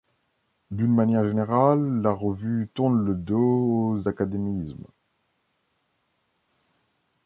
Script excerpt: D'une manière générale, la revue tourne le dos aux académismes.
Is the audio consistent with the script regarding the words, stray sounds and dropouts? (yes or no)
yes